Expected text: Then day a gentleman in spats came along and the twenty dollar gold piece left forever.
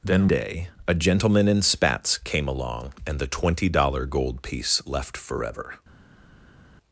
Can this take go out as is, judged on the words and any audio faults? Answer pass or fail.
pass